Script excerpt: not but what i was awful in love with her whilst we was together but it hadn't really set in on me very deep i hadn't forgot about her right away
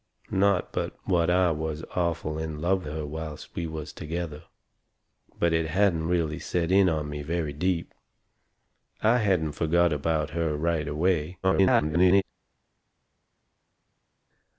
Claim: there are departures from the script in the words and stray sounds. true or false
true